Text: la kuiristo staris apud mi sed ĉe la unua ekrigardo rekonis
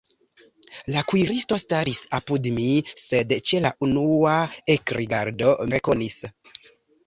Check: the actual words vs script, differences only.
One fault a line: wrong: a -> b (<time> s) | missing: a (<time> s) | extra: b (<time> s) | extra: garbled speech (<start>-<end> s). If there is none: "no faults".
no faults